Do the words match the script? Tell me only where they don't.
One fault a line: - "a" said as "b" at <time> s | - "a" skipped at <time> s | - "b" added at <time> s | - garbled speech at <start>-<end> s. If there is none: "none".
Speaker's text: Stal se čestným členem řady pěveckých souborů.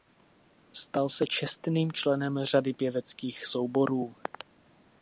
none